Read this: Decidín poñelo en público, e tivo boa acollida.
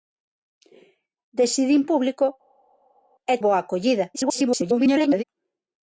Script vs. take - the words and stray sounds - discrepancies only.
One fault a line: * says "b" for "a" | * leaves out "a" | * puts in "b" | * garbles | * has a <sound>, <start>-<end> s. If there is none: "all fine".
* leaves out "poñelo"
* leaves out "tivo"
* garbles